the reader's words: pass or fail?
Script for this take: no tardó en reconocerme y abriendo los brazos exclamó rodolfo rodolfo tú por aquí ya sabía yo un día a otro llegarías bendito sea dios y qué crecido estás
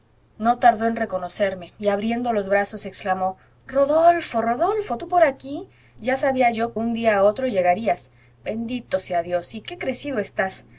pass